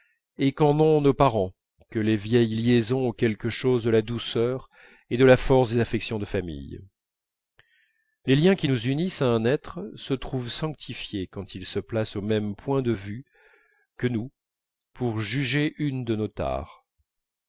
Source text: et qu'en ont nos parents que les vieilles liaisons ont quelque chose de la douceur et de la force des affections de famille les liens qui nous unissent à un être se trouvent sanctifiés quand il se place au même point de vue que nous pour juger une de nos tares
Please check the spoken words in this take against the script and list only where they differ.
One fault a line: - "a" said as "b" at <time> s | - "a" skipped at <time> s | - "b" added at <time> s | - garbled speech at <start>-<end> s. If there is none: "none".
none